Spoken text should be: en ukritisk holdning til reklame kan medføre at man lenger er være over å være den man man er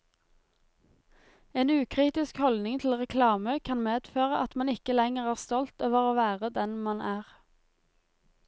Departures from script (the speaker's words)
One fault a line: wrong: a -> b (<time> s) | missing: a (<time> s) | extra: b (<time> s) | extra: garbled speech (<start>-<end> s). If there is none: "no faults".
extra: ikke (4.7 s)
wrong: være -> stolt (5.4 s)
missing: man (7.0 s)